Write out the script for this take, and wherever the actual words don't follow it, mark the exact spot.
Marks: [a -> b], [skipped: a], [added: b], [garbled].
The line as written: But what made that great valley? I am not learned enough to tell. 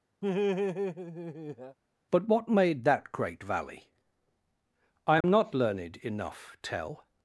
But what made that great valley? I am not learned enough [skipped: to] tell.